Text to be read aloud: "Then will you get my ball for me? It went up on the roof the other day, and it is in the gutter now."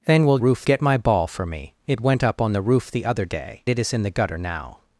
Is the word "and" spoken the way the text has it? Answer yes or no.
no